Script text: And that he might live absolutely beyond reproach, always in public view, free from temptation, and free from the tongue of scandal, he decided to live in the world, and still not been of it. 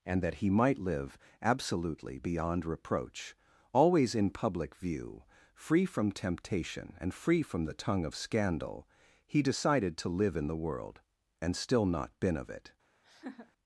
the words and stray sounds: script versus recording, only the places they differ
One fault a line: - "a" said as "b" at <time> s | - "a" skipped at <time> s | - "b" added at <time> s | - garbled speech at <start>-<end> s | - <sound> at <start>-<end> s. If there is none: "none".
- laugh at 13.0-13.5 s